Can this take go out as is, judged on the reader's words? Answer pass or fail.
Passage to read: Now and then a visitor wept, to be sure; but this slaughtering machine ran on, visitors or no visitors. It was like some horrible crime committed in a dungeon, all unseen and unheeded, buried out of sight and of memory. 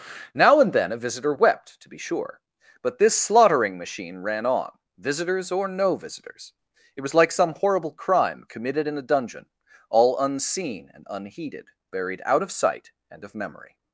pass